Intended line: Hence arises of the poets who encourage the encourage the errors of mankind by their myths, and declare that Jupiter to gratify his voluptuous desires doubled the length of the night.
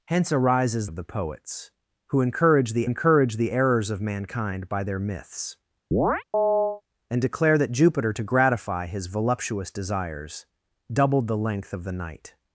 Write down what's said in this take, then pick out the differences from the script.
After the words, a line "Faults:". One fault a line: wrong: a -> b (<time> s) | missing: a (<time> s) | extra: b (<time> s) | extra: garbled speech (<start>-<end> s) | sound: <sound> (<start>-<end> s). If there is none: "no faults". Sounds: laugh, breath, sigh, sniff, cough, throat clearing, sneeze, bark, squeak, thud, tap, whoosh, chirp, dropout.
Hence arises of the poets who encourage the encourage the errors of mankind by their myths, and declare that Jupiter to gratify his voluptuous desires doubled the length of the night.
Faults:
sound: chirp (5.9-6.8 s)